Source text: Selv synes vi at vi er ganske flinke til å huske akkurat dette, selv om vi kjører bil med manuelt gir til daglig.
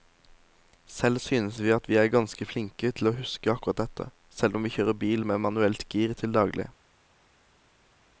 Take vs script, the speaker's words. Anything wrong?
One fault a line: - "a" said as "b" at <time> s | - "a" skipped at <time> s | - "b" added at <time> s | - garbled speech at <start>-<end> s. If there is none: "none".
none